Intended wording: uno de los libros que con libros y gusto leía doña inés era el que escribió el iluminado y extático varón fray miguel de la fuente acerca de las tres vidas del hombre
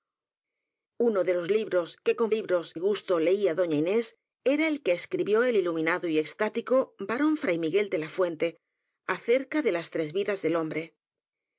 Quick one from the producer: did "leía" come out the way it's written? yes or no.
yes